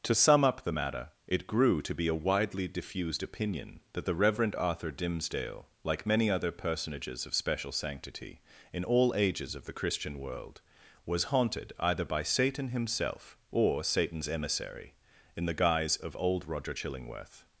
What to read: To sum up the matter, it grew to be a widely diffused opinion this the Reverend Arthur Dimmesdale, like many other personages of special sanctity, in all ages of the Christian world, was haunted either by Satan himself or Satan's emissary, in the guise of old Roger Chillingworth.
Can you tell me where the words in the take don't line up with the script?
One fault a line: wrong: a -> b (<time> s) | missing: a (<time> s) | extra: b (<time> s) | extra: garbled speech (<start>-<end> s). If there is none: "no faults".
wrong: this -> that (3.9 s)